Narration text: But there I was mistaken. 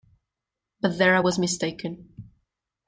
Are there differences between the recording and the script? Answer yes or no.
no